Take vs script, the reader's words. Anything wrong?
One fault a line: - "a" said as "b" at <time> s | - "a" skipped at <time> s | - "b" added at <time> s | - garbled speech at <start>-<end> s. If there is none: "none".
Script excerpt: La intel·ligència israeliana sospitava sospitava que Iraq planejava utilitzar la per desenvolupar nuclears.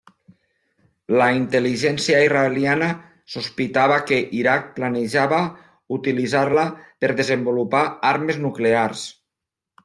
- "sospitava" skipped at 4.0 s
- "armes" added at 8.1 s